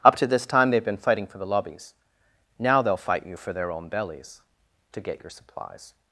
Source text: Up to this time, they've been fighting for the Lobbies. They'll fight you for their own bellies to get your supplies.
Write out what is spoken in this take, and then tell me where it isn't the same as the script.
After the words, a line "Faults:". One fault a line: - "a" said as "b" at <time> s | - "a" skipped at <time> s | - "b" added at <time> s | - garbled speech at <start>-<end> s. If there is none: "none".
Up to this time, they've been fighting for the Lobbies. Now they'll fight you for their own bellies to get your supplies.
Faults:
- "Now" added at 2.6 s